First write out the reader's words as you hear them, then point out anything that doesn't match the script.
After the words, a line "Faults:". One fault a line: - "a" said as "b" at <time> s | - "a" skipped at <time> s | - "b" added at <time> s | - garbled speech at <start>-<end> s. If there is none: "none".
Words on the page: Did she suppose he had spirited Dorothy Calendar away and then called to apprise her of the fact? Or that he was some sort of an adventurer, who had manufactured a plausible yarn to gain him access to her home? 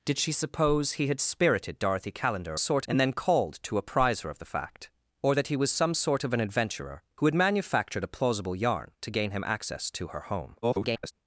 Did she suppose he had spirited Dorothy Calendar sort and then called to apprise her of the fact? Or that he was some sort of an adventurer, who had manufactured a plausible yarn to gain him access to her home? [garbled]
Faults:
- "away" said as "sort" at 2.6 s
- garbled speech at 10.6-11.1 s